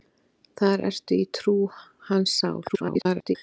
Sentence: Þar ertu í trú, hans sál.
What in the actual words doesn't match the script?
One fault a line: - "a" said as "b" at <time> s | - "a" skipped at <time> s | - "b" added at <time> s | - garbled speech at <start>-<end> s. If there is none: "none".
- garbled speech at 2.7-3.4 s